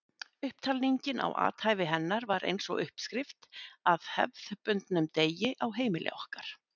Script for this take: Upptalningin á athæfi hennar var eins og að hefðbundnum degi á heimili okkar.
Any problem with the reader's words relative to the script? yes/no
yes